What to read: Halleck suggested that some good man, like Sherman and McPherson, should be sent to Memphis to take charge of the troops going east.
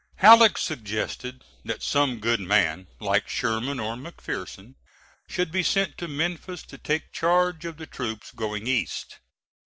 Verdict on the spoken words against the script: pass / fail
fail